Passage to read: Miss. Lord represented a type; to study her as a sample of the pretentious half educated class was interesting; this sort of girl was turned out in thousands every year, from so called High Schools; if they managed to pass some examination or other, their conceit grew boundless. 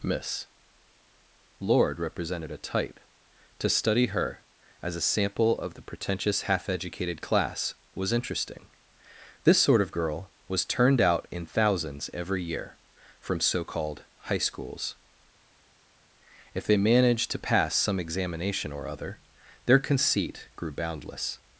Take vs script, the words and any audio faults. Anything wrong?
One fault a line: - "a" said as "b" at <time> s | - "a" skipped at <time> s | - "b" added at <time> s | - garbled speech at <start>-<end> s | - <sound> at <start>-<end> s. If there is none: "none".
none